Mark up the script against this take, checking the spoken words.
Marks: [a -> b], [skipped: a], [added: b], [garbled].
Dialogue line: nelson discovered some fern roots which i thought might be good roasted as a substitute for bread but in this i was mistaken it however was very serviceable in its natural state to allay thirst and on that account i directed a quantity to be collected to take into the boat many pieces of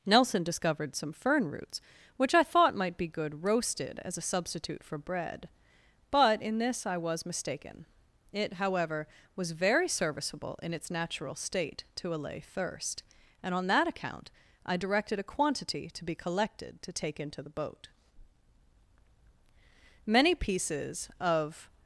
nelson discovered some fern roots which i thought might be good roasted as a substitute for bread but in this i was mistaken it however was very serviceable in its natural state to allay thirst and on that account i directed a quantity to be collected to take into the boat many pieces of